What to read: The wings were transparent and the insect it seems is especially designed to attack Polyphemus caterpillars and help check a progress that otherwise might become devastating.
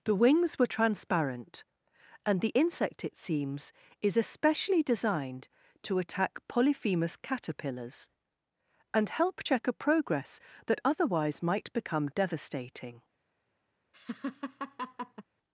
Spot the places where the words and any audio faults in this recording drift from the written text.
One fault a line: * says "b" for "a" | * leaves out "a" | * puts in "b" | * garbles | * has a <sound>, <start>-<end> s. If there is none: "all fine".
* has a laugh, 13.9-15.2 s